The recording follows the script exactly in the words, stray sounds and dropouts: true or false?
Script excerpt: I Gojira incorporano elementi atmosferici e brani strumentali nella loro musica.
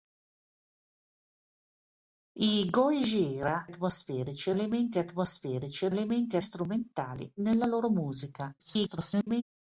false